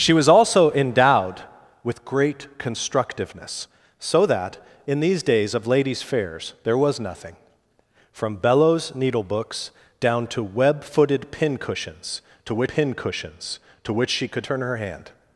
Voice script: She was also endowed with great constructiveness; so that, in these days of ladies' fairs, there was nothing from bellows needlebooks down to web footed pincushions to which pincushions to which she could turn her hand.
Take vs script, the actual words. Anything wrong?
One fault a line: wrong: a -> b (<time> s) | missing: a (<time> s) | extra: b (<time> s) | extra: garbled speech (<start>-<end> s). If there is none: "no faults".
no faults